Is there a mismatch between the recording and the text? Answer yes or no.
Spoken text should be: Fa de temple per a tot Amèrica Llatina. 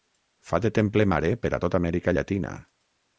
yes